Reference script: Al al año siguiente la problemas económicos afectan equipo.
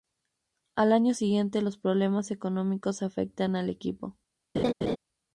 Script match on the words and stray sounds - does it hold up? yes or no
no